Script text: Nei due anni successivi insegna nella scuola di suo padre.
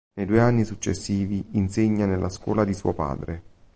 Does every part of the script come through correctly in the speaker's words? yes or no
yes